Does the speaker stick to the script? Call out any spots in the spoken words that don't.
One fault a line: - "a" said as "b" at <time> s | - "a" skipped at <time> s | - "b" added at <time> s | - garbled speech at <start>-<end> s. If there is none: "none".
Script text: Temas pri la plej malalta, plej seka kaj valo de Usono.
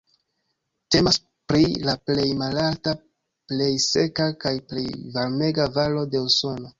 - "plej varmega" added at 4.7 s